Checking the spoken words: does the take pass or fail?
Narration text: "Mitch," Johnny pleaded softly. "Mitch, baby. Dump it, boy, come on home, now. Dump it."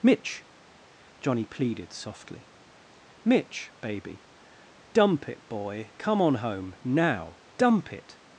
pass